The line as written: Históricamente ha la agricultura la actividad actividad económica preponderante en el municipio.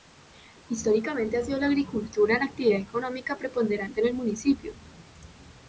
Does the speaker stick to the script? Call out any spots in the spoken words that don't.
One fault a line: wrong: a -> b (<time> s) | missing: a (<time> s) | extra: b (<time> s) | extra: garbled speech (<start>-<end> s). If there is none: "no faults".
extra: sido (1.4 s)
missing: actividad (2.8 s)